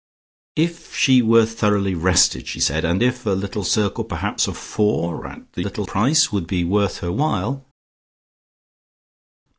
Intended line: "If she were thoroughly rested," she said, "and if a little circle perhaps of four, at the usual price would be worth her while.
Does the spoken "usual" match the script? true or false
false